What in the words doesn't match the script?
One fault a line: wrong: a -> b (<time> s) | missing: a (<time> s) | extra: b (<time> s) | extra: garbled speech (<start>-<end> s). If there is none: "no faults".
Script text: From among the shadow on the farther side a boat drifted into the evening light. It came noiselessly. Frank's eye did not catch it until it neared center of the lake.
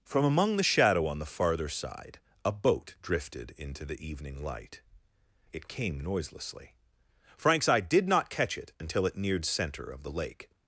no faults